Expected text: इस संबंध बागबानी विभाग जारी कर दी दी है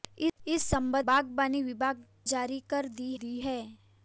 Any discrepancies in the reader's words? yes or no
no